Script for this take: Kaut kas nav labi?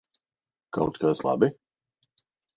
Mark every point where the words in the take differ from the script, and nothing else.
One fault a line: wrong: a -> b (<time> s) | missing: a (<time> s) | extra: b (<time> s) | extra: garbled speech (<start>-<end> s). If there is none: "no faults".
missing: nav (1.2 s)